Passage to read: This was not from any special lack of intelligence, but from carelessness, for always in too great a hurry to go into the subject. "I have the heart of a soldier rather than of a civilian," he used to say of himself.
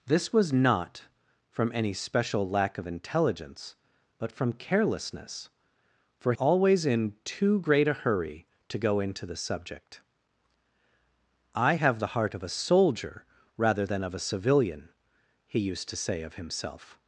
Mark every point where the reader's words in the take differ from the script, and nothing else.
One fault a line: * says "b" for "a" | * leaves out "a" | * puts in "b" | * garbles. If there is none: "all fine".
all fine